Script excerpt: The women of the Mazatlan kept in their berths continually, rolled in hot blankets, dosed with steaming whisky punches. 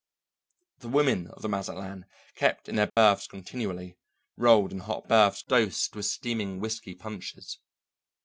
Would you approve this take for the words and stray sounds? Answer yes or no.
no